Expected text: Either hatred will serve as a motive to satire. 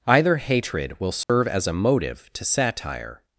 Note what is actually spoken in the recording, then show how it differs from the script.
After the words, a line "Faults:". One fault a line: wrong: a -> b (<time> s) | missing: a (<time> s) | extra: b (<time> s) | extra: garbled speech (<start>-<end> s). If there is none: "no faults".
Either hatred will serve as a motive to satire.
Faults:
no faults